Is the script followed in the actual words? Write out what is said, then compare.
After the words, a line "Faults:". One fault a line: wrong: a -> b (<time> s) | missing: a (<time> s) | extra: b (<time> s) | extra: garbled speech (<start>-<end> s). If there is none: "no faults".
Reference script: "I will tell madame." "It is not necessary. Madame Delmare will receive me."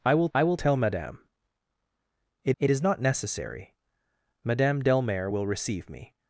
"I will I will tell madame." "It it is not necessary. Madame Delmare will receive me."
Faults:
extra: I will (0.3 s)
extra: it (2.6 s)